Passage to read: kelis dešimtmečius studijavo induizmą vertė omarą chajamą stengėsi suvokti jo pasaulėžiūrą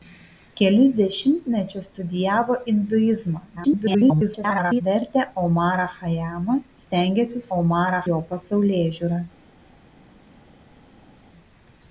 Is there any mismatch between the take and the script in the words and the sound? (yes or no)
yes